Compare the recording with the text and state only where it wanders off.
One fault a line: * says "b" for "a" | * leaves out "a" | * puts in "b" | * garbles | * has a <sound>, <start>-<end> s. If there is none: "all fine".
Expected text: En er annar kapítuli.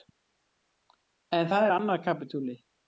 * puts in "það"